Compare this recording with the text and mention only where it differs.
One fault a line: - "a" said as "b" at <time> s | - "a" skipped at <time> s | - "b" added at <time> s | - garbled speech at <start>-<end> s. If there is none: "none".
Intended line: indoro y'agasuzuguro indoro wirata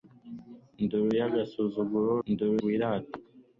none